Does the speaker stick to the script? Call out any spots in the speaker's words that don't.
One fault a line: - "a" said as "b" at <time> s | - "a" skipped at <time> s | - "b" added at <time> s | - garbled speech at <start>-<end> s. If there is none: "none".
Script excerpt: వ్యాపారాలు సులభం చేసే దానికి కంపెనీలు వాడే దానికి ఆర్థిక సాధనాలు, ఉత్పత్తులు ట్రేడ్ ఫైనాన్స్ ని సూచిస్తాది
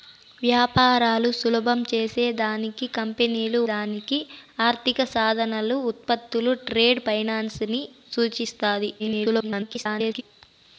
- "వాడే" skipped at 3.6 s
- garbled speech at 9.0-10.2 s